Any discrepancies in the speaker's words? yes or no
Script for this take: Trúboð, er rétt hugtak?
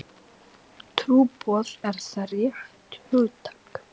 yes